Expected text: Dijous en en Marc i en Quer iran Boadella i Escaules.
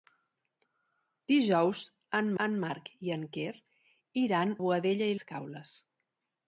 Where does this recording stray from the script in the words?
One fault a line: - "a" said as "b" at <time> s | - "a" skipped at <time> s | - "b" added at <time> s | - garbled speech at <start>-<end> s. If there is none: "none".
none